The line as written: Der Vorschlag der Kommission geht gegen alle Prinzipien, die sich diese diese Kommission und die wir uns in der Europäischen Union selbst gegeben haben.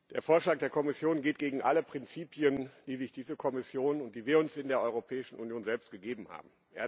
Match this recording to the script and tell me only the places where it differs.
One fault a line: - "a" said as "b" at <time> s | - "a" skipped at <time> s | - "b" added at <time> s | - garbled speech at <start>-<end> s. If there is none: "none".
- "diese" skipped at 3.4 s